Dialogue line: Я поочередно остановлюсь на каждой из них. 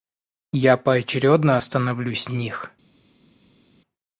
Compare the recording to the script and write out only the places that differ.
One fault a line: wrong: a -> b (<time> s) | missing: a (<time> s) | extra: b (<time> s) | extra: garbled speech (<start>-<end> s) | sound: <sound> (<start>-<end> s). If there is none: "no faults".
missing: на каждой из (2.3 s)